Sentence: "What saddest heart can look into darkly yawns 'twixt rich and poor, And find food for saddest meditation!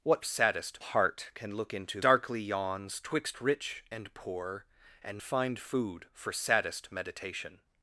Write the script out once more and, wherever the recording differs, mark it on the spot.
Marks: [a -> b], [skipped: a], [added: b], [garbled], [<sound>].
"What saddest heart can look into darkly yawns 'twixt rich and poor, And find food for saddest meditation!